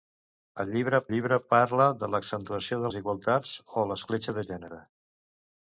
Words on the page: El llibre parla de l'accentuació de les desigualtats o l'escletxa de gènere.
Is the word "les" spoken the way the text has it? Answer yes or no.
no